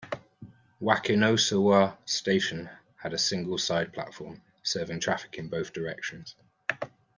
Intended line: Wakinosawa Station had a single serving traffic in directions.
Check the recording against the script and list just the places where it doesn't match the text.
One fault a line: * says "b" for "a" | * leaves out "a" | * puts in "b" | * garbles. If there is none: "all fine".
* puts in "side platform"
* puts in "both"